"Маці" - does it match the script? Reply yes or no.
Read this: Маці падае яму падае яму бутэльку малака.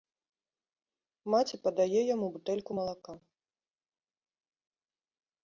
yes